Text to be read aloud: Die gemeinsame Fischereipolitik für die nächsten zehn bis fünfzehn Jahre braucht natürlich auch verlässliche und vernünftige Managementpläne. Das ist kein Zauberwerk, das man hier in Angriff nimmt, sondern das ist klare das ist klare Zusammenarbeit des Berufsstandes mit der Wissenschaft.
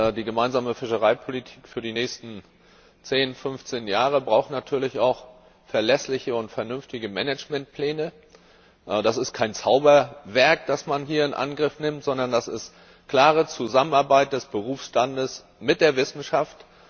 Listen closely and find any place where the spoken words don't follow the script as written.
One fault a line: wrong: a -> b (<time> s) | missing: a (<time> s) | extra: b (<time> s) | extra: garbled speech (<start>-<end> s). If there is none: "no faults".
missing: das ist klare (13.5 s)